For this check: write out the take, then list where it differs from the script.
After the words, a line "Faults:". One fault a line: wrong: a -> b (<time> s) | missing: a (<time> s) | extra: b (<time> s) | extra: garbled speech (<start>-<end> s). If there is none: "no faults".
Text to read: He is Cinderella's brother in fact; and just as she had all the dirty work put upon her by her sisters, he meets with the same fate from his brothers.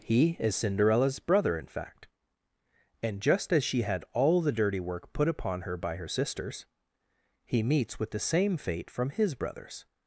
He is Cinderella's brother in fact; and just as she had all the dirty work put upon her by her sisters, he meets with the same fate from his brothers.
Faults:
no faults